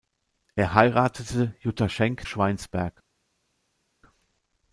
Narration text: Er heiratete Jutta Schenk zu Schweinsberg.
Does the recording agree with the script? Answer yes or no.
no